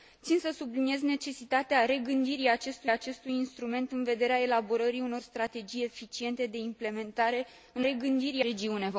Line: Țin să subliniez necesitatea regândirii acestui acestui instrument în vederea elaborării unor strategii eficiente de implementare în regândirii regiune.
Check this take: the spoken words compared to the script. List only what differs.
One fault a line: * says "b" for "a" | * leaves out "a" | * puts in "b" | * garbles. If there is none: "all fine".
all fine